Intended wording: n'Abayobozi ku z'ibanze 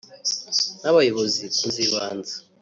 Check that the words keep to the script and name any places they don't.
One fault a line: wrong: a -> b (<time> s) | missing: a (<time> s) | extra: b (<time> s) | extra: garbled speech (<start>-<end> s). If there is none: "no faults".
no faults